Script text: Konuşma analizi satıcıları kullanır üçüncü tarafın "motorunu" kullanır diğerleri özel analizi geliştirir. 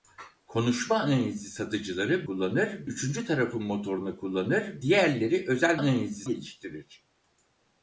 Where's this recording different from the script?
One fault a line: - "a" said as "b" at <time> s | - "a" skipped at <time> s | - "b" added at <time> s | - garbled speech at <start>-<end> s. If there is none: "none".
none